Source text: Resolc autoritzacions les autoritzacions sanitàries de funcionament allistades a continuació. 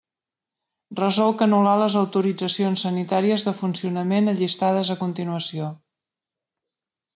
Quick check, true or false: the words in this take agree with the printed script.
false